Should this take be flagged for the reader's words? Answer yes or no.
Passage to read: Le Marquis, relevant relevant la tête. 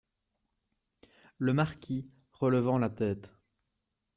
yes